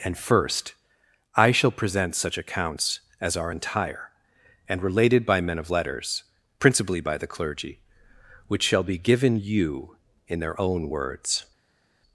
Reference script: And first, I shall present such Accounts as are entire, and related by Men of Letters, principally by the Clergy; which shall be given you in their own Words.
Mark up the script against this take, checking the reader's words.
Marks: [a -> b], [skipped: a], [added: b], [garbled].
And first, I shall present such Accounts as are entire, and related by Men of Letters, principally by the Clergy; which shall be given you in their own Words.